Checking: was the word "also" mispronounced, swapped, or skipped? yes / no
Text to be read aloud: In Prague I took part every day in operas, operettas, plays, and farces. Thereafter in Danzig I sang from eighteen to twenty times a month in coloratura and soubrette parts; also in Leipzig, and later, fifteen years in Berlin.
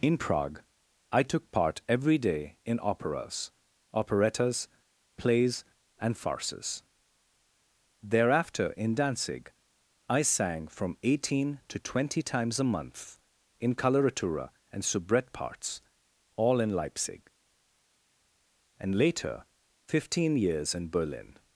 yes